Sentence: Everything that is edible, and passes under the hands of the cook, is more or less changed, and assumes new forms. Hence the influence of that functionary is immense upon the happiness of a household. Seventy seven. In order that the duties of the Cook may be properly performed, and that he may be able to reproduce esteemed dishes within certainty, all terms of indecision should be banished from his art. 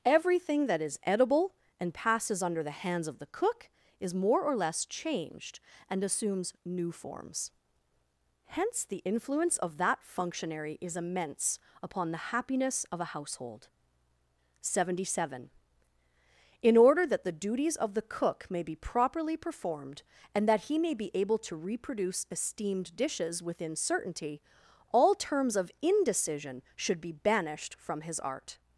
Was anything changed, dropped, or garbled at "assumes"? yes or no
no